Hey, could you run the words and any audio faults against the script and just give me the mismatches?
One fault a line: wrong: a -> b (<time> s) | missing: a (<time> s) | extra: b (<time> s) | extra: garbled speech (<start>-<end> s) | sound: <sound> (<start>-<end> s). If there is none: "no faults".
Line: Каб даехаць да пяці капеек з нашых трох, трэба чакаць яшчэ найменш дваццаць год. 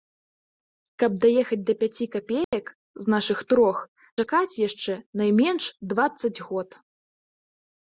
sound: dropout (2.4-2.5 s)
missing: трэба (3.8 s)